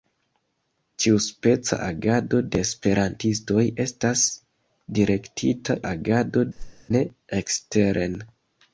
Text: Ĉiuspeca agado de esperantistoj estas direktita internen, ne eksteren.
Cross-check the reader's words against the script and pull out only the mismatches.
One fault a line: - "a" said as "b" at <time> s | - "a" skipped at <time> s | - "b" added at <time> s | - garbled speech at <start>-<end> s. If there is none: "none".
- "internen" said as "agado" at 5.9 s